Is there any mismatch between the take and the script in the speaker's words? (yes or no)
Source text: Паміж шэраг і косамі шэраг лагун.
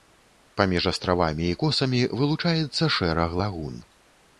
yes